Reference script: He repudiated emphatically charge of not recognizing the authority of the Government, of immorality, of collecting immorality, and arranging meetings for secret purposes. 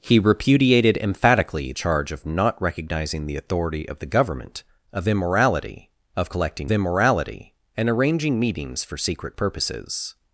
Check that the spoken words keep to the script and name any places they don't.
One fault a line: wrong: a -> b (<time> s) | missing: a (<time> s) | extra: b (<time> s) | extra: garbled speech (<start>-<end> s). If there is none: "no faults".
no faults